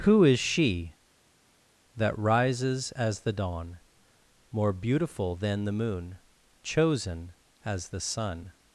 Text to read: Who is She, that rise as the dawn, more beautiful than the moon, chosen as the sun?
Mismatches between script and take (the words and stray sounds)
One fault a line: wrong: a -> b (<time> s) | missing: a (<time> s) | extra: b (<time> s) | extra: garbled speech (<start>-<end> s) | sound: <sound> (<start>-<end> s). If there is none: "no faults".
wrong: rise -> rises (2.2 s)